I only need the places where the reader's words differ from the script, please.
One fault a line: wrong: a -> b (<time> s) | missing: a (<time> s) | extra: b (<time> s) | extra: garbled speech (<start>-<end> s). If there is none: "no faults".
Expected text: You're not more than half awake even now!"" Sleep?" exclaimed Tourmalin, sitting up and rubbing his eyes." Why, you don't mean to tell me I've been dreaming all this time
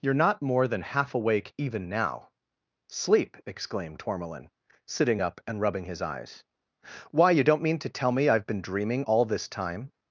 no faults